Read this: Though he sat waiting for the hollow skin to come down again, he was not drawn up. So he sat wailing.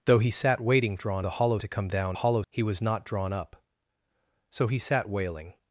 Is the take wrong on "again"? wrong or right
wrong